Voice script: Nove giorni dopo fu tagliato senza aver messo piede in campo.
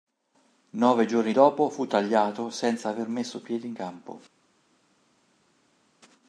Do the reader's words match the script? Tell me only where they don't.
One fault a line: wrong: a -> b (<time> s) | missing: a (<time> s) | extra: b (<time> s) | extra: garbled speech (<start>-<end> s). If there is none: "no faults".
no faults